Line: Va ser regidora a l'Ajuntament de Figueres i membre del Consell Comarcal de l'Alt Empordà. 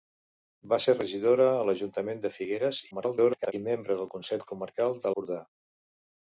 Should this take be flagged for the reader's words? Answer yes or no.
yes